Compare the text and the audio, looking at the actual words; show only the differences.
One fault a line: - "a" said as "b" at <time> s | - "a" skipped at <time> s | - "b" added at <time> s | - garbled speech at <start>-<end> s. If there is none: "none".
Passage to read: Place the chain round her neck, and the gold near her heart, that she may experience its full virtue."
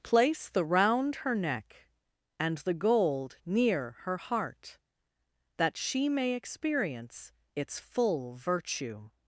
- "chain" skipped at 0.7 s